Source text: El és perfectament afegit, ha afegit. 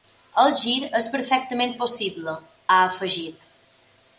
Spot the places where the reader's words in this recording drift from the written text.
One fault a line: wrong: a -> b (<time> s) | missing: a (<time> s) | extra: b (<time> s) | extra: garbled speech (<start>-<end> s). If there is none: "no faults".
extra: gir (0.6 s)
wrong: afegit -> possible (1.8 s)